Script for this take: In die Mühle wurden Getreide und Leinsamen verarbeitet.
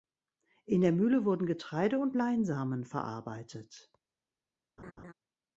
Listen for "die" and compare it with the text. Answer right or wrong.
wrong